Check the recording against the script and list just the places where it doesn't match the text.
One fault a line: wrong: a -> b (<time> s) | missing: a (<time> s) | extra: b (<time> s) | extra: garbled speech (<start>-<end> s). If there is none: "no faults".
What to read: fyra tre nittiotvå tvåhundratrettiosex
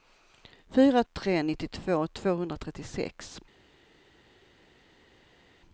no faults